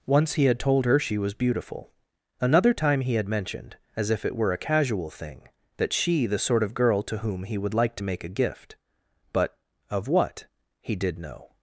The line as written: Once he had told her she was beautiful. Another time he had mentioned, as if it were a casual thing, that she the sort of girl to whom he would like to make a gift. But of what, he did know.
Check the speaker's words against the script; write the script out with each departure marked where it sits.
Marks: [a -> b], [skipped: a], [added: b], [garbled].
Once he had told her she was beautiful. Another time he had mentioned, as if it were a casual thing, that she the sort of girl to whom he would like to make a gift. But of what, he did know.